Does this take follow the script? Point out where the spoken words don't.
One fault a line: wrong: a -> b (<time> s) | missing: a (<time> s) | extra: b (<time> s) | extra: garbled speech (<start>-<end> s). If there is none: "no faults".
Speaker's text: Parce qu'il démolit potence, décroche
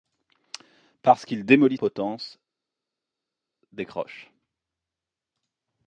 no faults